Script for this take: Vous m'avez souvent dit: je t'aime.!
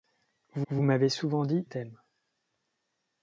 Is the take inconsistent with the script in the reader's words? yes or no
yes